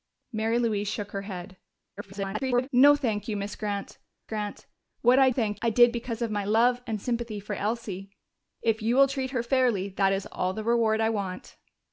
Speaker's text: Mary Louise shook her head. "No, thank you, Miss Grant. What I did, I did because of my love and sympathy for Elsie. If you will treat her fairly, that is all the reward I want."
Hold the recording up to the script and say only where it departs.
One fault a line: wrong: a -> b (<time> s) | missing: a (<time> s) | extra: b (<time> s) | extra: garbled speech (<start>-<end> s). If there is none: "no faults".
extra: garbled speech (2.0-2.7 s)
extra: Grant (4.3 s)
wrong: did -> thank (5.3 s)